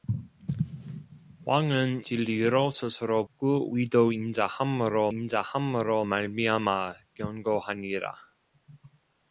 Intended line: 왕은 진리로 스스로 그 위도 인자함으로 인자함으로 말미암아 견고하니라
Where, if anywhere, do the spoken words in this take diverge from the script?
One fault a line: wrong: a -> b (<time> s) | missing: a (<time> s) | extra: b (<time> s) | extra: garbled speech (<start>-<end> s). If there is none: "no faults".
no faults